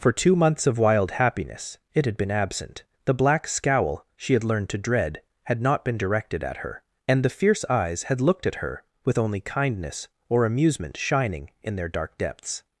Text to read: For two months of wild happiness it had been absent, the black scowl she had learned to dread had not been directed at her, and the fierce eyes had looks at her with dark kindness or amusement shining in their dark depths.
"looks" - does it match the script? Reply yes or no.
no